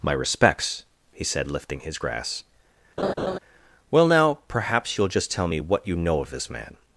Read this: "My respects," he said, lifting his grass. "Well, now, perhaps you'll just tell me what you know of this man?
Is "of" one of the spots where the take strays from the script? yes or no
no